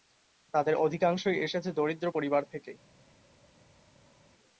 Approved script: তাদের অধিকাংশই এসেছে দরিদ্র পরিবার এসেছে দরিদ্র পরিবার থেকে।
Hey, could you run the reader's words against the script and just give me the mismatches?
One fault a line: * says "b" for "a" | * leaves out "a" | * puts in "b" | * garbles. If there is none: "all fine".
* leaves out "এসেছে দরিদ্র পরিবার"